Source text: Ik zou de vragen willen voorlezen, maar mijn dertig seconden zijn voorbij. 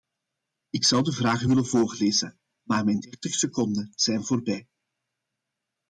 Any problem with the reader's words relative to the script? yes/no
no